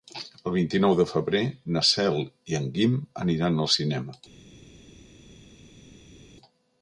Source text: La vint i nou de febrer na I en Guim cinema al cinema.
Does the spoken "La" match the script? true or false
false